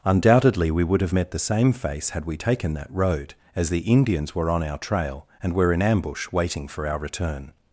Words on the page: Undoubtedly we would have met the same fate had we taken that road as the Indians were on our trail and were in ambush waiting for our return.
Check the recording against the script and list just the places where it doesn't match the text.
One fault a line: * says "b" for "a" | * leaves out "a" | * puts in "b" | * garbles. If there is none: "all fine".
* says "face" for "fate"